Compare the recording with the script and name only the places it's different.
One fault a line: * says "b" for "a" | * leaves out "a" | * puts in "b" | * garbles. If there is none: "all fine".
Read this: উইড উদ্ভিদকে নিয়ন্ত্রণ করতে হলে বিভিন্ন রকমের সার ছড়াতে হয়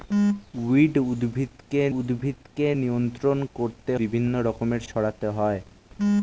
* puts in "উদ্ভিদকে"
* leaves out "হলে"
* leaves out "সার"